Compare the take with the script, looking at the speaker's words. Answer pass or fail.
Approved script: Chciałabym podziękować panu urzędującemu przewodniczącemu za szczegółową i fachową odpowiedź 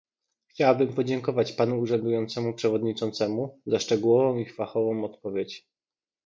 pass